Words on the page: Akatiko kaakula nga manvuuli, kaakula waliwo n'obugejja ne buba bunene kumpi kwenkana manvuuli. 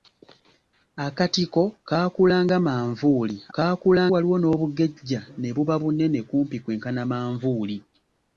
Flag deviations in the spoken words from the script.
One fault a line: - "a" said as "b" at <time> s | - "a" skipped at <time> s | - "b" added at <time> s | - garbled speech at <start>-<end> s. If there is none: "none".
none